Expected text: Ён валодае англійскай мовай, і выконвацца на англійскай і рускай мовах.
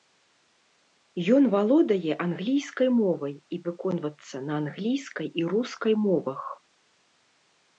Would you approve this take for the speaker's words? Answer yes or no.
yes